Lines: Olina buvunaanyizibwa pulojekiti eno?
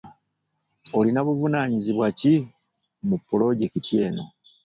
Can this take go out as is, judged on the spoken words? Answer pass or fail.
fail